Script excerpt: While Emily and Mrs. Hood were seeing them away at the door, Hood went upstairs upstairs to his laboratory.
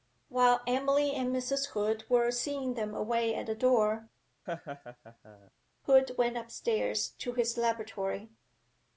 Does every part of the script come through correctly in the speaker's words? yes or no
no